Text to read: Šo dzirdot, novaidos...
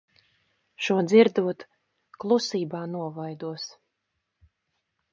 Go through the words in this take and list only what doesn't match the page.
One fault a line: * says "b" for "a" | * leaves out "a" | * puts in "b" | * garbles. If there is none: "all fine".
* puts in "klusībā"